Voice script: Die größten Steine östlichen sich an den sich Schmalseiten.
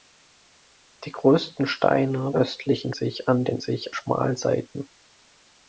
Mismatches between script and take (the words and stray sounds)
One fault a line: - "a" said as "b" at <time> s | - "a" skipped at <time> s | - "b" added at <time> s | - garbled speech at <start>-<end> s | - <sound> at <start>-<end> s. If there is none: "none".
none